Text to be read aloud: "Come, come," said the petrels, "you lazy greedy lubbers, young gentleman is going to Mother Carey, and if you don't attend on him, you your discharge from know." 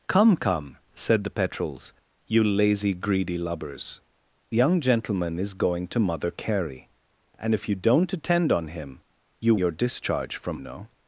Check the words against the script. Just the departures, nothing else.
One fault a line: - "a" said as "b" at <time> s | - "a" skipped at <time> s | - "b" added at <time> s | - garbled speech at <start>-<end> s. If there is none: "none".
none